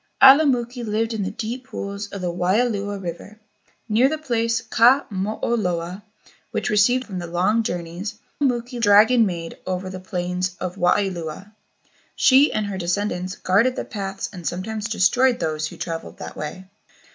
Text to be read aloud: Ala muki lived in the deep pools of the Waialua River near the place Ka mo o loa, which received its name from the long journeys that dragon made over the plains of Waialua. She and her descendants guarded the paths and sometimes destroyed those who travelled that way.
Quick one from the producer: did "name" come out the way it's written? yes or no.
no